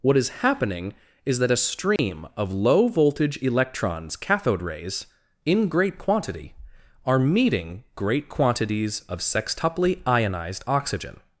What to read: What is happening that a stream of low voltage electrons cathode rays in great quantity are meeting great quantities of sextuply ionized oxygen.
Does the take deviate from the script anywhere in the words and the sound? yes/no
yes